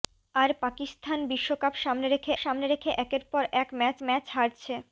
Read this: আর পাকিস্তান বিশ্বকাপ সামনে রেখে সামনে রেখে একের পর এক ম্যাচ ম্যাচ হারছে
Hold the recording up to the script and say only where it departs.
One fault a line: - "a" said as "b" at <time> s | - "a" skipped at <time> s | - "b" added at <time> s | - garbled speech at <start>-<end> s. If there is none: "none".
none